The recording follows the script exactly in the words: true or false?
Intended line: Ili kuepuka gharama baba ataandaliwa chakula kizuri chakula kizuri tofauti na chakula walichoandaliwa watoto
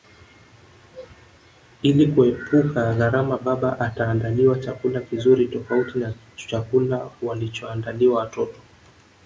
false